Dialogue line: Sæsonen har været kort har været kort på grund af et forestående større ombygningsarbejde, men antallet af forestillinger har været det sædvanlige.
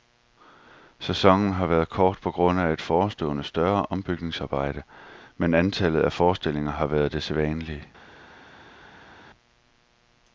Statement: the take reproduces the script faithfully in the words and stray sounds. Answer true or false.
false